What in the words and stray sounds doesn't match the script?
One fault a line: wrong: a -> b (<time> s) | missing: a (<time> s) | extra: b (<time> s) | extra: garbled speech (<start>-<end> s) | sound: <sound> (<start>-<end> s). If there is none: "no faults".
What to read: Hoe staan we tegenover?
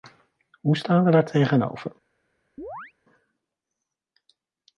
extra: daar (1.1 s)
sound: chirp (2.6-2.9 s)